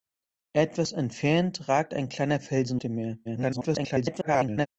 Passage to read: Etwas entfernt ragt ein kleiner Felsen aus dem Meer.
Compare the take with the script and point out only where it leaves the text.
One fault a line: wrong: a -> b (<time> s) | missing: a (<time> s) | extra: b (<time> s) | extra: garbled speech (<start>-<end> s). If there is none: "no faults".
missing: aus (2.8 s)
extra: garbled speech (3.2-4.7 s)